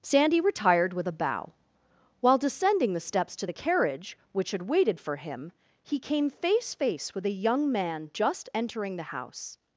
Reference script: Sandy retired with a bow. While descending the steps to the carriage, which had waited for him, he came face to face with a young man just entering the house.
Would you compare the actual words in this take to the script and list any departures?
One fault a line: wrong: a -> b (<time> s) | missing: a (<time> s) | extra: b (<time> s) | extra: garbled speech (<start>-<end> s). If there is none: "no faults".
missing: to (6.7 s)